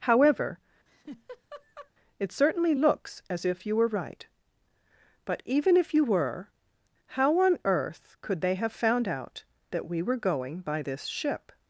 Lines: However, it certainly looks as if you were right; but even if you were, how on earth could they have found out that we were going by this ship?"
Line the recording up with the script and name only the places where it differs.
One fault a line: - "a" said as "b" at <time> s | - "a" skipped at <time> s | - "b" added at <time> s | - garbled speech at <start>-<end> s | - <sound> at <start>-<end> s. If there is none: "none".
- laugh at 0.9-1.9 s